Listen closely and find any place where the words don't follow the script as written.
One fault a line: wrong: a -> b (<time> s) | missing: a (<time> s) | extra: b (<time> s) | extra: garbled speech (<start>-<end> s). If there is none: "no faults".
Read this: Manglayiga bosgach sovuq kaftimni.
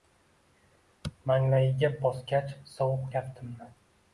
no faults